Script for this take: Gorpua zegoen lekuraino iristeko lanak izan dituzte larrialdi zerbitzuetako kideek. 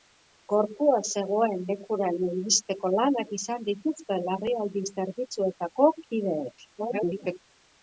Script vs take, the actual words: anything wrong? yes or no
yes